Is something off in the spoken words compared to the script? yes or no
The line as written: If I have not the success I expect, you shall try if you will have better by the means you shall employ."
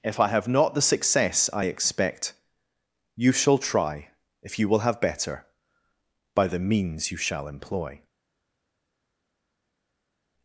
no